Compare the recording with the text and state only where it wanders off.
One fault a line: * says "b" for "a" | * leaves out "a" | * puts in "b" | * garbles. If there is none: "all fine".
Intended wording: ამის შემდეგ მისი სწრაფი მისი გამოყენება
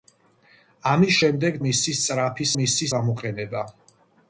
all fine